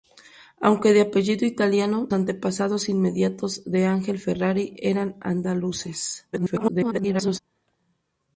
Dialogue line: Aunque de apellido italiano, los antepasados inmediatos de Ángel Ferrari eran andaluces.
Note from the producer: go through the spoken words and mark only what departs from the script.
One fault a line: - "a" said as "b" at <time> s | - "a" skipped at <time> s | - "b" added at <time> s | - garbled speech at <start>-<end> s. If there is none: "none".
- "los" skipped at 2.1 s
- garbled speech at 6.3-7.4 s